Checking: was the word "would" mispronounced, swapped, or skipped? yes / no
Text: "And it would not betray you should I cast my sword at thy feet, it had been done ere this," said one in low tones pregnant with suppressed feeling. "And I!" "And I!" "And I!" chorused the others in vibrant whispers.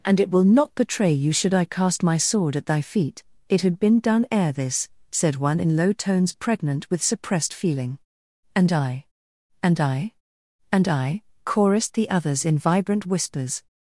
yes